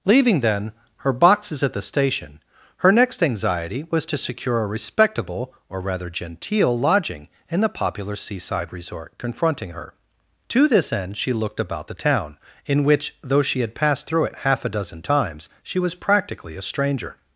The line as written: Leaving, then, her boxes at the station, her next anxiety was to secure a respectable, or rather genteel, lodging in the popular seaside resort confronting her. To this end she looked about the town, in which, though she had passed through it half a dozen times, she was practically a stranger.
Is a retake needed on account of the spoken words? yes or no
no